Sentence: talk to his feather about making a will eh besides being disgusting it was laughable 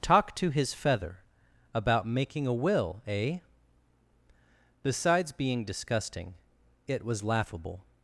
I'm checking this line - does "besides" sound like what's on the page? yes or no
yes